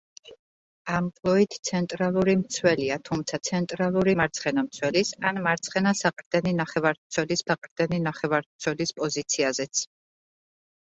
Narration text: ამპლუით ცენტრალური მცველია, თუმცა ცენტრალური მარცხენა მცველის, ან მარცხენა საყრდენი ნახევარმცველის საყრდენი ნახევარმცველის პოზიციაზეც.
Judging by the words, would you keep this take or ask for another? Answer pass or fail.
pass